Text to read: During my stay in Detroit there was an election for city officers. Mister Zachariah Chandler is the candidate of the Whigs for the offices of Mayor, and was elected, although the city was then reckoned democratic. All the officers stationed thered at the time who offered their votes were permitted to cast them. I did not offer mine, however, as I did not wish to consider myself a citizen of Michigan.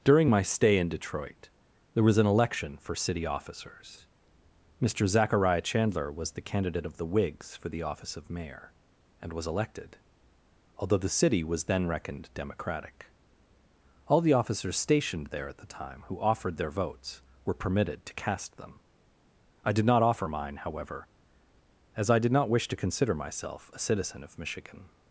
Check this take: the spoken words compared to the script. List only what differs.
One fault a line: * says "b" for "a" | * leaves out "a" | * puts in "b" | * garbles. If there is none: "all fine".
* says "was" for "is"
* says "office" for "offices"
* says "there" for "thered"